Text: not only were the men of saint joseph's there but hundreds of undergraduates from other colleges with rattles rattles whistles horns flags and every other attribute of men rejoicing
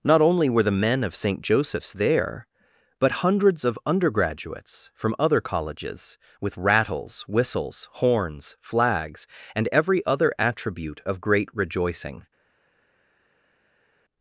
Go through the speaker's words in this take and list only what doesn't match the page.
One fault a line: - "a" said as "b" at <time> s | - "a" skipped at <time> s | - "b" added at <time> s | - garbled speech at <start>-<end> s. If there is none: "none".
- "rattles" skipped at 7.2 s
- "men" said as "great" at 11.2 s